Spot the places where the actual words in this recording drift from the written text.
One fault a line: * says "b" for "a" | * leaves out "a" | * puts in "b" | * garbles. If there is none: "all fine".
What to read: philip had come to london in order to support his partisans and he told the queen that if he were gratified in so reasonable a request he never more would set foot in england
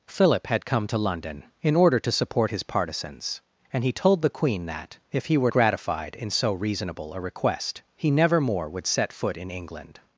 all fine